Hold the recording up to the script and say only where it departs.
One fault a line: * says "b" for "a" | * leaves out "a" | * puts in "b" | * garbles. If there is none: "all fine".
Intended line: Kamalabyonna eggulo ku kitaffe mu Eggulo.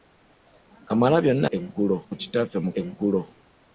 all fine